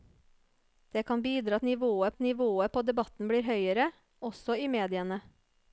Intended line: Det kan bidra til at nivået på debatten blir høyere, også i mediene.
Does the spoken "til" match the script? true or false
false